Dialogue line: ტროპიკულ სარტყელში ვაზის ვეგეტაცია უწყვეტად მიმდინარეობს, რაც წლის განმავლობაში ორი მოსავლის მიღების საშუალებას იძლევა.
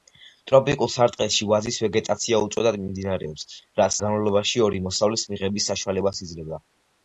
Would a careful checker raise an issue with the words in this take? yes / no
yes